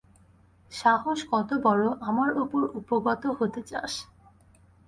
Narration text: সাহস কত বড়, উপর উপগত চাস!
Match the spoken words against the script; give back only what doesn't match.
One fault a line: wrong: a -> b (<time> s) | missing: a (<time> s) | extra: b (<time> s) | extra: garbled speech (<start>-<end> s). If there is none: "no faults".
extra: আমার (2.0 s)
extra: হতে (3.4 s)